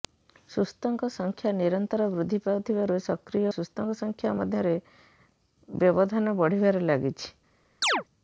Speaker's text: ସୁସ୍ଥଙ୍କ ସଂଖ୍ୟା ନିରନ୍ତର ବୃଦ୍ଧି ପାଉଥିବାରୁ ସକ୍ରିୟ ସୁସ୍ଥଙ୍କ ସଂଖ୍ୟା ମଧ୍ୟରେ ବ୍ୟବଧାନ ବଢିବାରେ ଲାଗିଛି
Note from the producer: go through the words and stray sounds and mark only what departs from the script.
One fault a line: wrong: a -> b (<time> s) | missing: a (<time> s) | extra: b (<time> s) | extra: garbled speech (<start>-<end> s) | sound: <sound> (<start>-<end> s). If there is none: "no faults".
sound: chirp (7.8-8.0 s)